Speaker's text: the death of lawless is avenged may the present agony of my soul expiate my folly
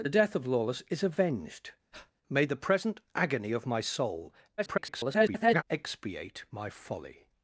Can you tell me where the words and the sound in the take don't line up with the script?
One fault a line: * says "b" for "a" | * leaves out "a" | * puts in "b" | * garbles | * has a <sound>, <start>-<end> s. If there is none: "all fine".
* has a breath, 1.9-2.1 s
* garbles